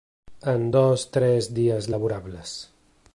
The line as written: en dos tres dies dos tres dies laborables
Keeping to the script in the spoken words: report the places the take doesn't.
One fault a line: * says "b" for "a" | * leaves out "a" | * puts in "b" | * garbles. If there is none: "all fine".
* leaves out "dos tres dies"